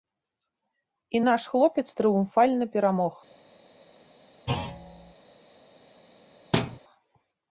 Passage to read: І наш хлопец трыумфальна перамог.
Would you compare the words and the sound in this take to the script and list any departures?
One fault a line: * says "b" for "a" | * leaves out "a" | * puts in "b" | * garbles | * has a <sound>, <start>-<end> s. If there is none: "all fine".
* has a thud, 4.5-5.1 s
* has a thud, 6.5-6.8 s